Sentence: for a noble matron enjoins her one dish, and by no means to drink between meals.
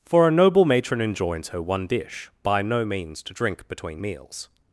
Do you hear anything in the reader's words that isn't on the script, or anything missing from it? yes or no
yes